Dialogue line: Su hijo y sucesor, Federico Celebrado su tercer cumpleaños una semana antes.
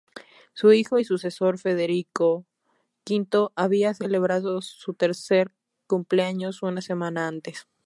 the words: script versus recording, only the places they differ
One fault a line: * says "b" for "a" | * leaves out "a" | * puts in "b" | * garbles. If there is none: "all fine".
* puts in "V había"